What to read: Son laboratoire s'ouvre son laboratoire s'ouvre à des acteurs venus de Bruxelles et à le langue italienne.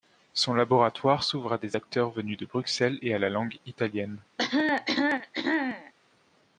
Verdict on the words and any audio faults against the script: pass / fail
fail